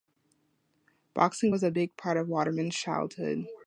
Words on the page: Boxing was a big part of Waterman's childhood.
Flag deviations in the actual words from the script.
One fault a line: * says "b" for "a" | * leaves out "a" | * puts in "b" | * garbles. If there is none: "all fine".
all fine